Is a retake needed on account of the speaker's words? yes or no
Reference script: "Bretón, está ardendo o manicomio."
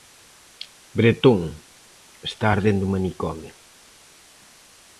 no